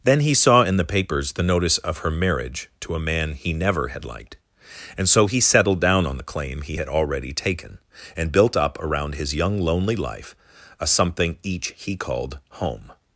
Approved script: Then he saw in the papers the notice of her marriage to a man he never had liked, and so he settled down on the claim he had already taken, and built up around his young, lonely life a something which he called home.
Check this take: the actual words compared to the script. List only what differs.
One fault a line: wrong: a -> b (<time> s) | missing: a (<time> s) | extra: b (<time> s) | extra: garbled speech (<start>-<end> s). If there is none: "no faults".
wrong: which -> each (11.4 s)